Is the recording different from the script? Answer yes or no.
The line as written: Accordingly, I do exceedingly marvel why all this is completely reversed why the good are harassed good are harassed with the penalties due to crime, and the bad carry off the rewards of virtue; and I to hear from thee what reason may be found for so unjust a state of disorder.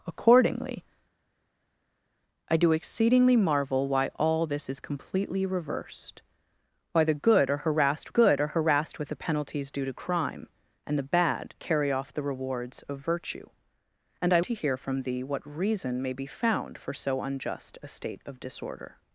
no